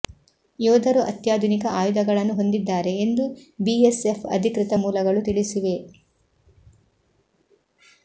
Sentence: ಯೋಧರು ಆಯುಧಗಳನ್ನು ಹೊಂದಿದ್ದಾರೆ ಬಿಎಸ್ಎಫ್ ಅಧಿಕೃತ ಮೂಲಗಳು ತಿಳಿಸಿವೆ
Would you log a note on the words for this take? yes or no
yes